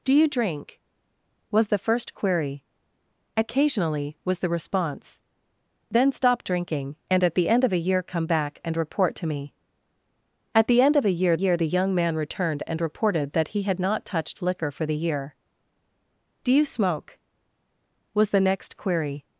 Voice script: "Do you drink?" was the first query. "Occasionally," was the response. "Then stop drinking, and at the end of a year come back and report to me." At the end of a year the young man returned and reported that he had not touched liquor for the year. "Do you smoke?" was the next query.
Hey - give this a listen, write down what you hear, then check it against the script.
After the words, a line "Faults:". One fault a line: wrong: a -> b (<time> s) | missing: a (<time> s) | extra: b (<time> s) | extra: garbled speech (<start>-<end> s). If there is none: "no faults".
"Do you drink?" was the first query. "Occasionally," was the response. "Then stop drinking, and at the end of a year come back and report to me." At the end of a year year the young man returned and reported that he had not touched liquor for the year. "Do you smoke?" was the next query.
Faults:
extra: year (11.4 s)